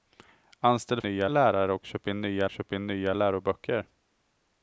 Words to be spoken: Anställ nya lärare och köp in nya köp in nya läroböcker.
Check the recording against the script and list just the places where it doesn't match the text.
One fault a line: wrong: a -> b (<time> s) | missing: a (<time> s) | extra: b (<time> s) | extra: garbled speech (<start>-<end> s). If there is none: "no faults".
no faults